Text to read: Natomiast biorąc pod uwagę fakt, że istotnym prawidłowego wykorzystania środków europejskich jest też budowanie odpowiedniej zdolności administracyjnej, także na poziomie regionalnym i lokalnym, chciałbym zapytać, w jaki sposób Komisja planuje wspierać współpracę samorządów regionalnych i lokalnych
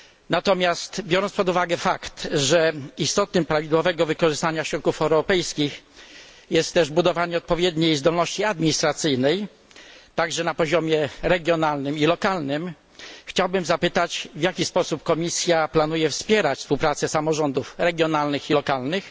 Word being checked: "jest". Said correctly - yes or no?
yes